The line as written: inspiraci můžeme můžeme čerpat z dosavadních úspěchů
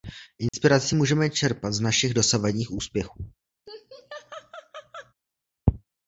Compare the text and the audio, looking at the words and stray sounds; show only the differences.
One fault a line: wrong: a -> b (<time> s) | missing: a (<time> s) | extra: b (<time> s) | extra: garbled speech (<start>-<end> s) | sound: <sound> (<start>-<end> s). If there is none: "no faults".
sound: dropout (0.5-0.5 s)
missing: můžeme (1.3 s)
extra: našich (1.8 s)
sound: laugh (3.7-5.1 s)